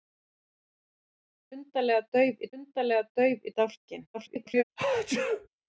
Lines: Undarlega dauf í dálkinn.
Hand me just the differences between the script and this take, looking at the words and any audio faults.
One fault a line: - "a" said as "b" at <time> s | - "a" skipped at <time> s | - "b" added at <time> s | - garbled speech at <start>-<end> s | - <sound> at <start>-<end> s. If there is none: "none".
- "undarlega dauf" added at 2.6 s
- garbled speech at 4.1-4.6 s
- sneeze at 4.8-5.5 s